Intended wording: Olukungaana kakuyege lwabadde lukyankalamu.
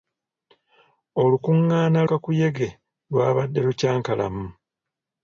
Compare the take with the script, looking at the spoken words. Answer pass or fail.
pass